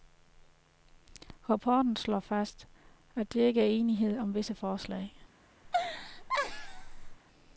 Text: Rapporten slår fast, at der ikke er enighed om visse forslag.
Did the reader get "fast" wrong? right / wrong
right